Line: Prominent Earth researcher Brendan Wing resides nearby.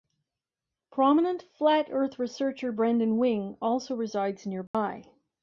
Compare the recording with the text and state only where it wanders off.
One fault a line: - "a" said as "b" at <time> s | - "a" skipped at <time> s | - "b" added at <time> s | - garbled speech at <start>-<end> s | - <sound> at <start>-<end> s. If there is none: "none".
- "Flat" added at 1.4 s
- "also" added at 3.6 s
- dropout at 4.7-4.7 s